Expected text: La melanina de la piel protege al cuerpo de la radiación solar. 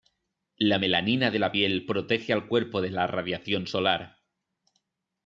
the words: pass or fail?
pass